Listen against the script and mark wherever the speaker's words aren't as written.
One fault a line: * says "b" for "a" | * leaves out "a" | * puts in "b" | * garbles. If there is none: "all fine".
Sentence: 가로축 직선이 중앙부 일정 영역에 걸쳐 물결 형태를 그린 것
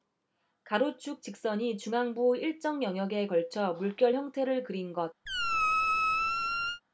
all fine